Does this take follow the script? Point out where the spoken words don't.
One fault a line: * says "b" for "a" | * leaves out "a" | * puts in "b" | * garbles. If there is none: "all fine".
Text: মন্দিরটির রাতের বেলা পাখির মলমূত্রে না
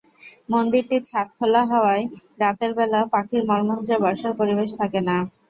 * puts in "ছাদ খোলা হওয়ায়"
* puts in "বসার পরিবেশ থাকে"